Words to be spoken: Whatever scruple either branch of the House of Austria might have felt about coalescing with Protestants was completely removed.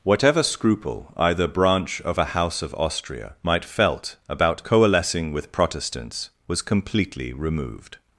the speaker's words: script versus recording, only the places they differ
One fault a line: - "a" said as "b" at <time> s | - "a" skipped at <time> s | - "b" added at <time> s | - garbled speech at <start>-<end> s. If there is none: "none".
- "the" said as "a" at 2.2 s
- "have" skipped at 3.6 s